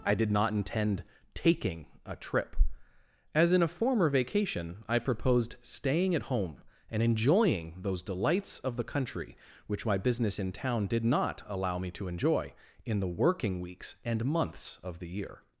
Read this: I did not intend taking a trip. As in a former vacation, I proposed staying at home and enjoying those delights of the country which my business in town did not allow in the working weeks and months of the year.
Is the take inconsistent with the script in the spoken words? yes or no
yes